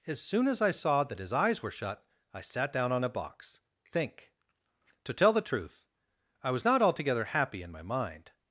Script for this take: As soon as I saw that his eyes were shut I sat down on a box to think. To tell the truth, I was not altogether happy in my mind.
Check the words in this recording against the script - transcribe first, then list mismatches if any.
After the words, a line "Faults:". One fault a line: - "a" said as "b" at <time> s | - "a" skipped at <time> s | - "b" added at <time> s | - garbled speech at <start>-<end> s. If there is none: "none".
As soon as I saw that his eyes were shut I sat down on a box think. To tell the truth, I was not altogether happy in my mind.
Faults:
- "to" skipped at 3.6 s